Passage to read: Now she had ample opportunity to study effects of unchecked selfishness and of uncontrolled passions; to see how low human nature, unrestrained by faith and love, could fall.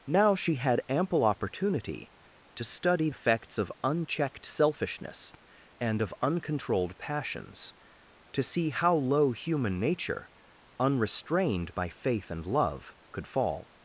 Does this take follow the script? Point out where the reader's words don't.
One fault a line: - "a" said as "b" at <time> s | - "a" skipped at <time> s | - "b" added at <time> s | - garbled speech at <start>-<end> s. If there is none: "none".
none